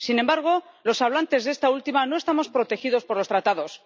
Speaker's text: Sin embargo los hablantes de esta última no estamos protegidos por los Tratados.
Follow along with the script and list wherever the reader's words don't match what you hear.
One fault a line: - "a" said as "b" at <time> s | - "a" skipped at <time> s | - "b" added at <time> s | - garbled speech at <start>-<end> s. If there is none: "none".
none